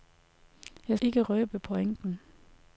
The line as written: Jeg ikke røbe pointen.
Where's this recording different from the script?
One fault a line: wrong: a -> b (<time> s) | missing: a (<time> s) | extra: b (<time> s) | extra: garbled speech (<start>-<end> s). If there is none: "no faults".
no faults